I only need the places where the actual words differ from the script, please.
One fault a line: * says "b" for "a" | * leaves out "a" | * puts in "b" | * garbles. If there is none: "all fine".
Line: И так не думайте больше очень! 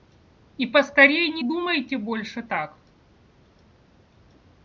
* says "поскорей" for "так"
* says "так" for "очень"